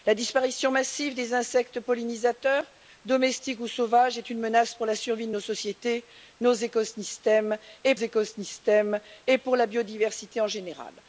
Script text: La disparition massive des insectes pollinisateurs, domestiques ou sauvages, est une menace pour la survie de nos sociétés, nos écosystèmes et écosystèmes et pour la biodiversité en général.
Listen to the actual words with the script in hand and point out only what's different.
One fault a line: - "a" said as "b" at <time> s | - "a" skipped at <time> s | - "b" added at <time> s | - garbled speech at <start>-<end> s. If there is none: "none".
none